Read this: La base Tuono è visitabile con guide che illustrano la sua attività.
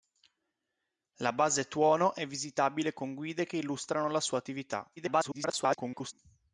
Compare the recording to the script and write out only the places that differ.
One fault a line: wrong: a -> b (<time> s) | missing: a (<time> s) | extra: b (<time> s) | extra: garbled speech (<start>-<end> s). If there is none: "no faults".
extra: garbled speech (5.0-6.1 s)